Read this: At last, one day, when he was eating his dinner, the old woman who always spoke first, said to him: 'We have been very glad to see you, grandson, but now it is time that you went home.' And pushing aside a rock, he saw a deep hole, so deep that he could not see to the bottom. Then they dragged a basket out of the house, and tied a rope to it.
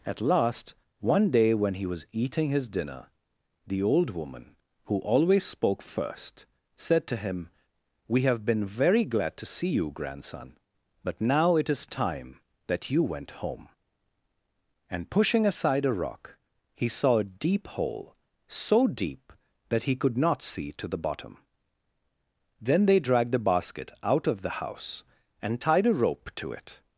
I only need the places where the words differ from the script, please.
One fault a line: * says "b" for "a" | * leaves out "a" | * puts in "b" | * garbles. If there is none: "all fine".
* says "the" for "a"